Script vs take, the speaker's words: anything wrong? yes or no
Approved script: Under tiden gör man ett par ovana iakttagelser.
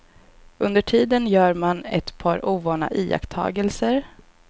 no